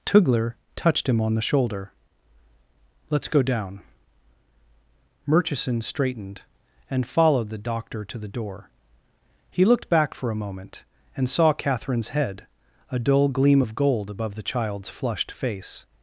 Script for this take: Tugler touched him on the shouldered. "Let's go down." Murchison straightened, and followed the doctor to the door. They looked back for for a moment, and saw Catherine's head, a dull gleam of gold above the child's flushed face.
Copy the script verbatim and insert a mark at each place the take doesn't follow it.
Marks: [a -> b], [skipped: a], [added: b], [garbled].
Tugler touched him on the [shouldered. -> shoulder] "Let's go down." Murchison straightened, and followed the doctor to the door. [They -> He] looked back for [skipped: for] a moment, and saw Catherine's head, a dull gleam of gold above the child's flushed face.